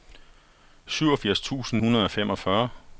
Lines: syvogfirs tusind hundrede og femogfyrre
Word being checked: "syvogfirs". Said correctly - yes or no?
yes